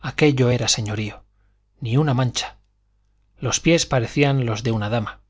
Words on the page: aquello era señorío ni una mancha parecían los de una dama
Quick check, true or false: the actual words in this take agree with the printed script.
false